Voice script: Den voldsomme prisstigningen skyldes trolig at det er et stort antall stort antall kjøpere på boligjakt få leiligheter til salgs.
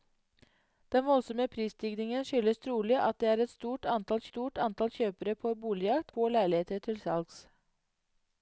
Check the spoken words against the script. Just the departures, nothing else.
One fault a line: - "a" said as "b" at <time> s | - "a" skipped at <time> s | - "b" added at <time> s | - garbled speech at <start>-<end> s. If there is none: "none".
none